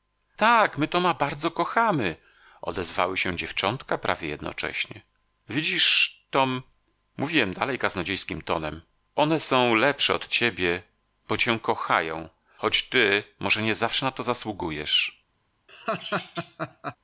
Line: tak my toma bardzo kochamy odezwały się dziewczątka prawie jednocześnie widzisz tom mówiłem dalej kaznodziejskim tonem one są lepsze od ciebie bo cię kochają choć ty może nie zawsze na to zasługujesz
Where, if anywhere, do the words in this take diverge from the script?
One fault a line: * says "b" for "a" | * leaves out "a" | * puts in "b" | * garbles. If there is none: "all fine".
all fine